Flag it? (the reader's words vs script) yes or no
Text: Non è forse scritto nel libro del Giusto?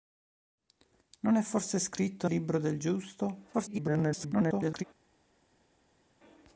yes